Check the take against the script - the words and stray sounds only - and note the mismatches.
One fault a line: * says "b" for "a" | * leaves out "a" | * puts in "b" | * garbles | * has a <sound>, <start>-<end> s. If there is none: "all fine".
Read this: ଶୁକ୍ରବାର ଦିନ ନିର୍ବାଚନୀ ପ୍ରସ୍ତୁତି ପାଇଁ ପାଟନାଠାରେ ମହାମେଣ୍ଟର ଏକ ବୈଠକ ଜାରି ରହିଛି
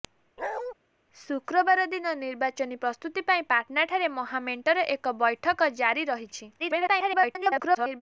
* has a bark, 0.4-0.7 s
* garbles